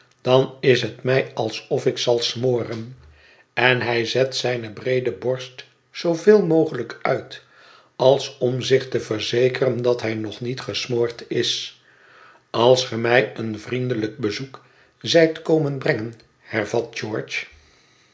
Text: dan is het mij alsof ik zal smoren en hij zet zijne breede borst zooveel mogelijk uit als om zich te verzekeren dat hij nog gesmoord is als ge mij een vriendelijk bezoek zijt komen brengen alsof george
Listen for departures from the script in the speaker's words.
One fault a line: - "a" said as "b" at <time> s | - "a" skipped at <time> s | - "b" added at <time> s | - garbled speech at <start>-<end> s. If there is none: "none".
- "niet" added at 10.4 s
- "alsof" said as "hervat" at 16.4 s